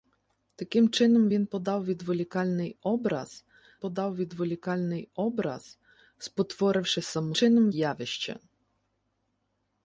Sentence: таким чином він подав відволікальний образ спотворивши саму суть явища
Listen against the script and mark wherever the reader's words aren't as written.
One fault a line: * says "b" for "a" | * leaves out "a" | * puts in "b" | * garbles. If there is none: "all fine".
* puts in "подав відволікальний образ"
* says "чином" for "суть"